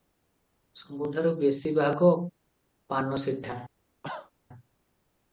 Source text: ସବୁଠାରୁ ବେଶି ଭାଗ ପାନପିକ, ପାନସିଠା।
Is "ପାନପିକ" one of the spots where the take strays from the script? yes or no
yes